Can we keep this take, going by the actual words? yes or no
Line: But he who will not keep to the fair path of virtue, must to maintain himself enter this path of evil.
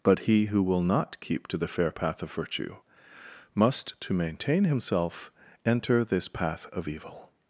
yes